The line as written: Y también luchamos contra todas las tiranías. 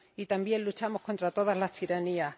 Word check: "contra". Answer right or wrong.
right